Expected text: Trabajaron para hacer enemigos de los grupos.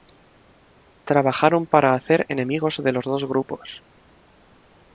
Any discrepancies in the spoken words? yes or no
yes